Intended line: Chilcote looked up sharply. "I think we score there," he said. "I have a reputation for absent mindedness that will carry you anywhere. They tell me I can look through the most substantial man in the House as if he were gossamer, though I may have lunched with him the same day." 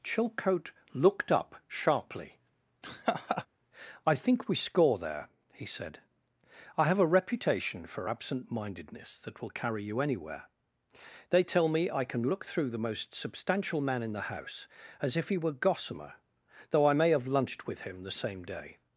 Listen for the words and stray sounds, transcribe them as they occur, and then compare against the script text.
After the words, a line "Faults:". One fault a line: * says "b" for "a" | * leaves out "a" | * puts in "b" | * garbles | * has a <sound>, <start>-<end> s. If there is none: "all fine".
Chilcote looked up sharply. "I think we score there," he said. "I have a reputation for absent mindedness that will carry you anywhere. They tell me I can look through the most substantial man in the House as if he were gossamer, though I may have lunched with him the same day."
Faults:
* has a laugh, 2.8-3.5 s